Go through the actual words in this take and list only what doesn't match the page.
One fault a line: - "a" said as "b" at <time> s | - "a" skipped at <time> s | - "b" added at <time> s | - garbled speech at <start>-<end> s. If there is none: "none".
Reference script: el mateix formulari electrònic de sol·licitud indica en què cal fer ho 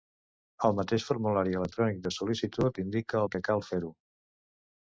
none